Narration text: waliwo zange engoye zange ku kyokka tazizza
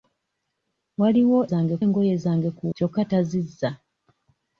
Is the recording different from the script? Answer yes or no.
no